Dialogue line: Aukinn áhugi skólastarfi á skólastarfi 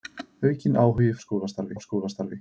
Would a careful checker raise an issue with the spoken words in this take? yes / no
no